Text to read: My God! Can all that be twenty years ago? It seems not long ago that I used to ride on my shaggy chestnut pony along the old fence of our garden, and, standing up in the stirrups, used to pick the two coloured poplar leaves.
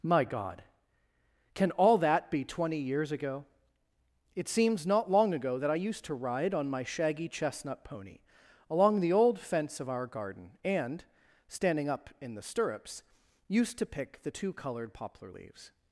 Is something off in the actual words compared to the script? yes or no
no